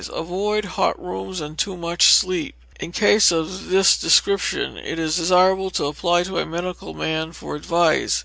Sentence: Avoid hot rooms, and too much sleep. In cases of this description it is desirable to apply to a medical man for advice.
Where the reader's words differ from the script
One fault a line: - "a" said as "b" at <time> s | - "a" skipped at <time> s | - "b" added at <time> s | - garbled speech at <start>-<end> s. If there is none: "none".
none